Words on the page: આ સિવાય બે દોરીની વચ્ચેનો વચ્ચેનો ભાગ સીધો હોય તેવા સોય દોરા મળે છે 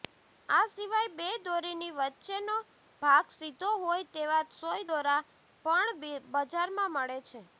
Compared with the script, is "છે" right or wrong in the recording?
right